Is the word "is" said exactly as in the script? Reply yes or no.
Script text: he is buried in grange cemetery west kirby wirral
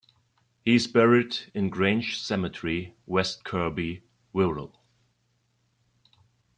yes